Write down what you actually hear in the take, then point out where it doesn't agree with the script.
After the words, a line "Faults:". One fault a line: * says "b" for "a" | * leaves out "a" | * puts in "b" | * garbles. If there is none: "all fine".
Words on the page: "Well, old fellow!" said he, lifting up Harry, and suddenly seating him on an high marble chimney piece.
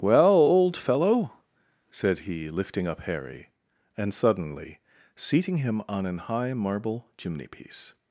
"Well, old fellow!" said he, lifting up Harry, and suddenly seating him on an high marble chimney piece.
Faults:
all fine